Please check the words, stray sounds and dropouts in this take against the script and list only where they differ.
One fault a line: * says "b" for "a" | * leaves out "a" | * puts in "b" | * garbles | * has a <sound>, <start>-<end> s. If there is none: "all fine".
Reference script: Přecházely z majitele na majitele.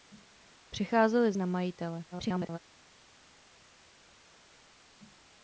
* leaves out "majitele"
* garbles